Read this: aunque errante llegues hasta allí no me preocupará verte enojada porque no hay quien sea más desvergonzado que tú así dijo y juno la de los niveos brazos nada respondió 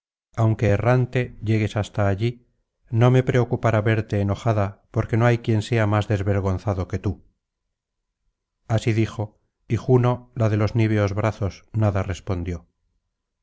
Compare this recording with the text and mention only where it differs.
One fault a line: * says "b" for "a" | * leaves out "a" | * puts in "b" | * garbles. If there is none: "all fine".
all fine